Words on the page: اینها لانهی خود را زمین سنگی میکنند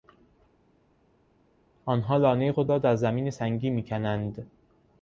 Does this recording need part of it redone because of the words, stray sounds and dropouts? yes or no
yes